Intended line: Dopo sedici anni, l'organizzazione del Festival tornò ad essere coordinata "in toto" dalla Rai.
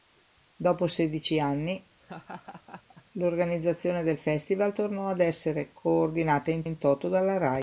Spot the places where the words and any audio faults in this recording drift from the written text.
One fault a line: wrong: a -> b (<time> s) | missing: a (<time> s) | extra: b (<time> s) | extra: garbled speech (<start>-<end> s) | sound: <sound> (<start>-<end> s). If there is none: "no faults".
sound: laugh (2.0-3.0 s)
extra: in (6.6 s)